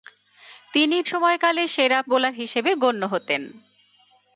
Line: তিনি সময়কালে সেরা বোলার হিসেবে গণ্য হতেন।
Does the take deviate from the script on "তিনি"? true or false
false